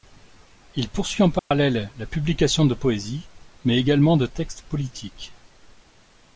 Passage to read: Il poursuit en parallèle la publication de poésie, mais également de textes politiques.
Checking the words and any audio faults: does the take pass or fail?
fail